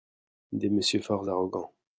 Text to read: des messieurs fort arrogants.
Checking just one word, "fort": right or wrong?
right